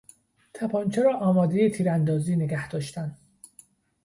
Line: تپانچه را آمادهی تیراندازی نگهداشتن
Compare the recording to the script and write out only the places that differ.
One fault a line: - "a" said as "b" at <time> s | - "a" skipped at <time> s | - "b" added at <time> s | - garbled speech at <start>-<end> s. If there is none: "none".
none